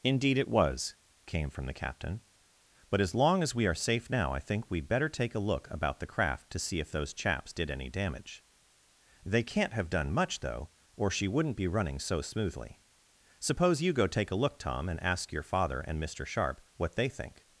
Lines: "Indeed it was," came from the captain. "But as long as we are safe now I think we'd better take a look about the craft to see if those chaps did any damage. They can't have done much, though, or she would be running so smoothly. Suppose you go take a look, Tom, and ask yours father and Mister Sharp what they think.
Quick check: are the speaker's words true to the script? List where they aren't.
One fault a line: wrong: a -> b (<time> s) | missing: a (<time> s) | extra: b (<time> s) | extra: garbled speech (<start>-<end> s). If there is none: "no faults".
wrong: would -> wouldn't (11.3 s)
wrong: yours -> your (15.3 s)